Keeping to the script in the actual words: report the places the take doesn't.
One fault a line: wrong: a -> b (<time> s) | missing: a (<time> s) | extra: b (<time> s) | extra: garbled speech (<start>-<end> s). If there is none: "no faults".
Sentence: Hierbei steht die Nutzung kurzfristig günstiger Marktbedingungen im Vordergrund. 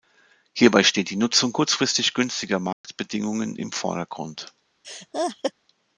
no faults